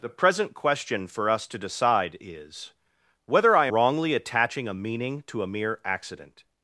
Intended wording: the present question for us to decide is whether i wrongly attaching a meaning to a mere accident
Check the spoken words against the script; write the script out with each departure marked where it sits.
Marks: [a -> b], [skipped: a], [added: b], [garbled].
the present question for us to decide is whether i wrongly attaching a meaning to a mere accident